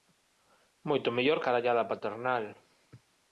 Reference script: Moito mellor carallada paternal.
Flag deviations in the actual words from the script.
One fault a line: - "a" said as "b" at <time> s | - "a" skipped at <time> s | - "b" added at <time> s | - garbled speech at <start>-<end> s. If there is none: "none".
none